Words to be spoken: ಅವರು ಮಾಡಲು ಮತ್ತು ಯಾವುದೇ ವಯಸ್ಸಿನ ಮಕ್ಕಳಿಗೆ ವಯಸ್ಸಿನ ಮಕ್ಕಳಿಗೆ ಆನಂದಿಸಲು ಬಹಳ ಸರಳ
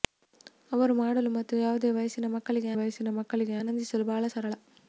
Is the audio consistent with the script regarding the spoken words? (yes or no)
yes